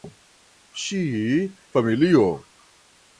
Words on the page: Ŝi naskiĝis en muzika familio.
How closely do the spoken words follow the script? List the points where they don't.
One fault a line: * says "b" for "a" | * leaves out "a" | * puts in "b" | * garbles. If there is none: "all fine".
* leaves out "naskiĝis en muzika"